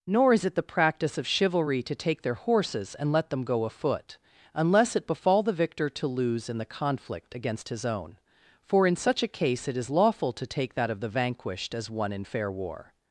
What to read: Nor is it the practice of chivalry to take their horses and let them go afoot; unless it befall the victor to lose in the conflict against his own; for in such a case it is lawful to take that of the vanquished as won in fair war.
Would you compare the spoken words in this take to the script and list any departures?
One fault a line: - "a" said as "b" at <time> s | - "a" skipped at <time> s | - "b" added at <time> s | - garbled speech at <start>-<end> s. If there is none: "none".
none